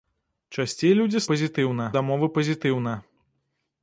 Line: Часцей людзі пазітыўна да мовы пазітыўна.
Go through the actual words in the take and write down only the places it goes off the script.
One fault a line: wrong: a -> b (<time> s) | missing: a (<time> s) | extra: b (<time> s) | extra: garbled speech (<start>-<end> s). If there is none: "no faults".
no faults